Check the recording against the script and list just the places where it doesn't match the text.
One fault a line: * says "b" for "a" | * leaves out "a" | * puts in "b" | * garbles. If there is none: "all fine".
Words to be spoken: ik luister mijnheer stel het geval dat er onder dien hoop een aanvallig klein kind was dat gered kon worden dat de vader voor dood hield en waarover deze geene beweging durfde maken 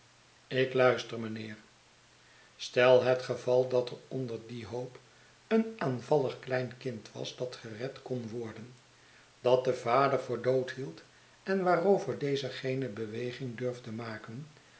all fine